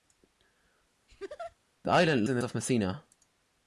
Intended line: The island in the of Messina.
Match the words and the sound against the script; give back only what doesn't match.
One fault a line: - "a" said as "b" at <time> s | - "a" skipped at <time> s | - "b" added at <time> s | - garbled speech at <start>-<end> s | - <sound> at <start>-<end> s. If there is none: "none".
- laugh at 1.1-1.6 s